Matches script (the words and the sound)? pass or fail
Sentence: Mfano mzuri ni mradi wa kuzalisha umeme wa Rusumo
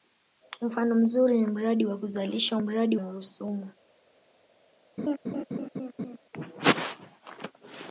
fail